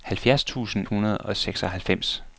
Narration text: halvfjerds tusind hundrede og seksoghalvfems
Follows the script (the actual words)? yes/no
yes